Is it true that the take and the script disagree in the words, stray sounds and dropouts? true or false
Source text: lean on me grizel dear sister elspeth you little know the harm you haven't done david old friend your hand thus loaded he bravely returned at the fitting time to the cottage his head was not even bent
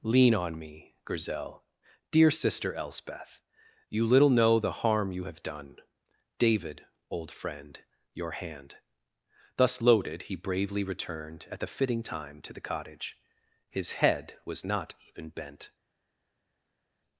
true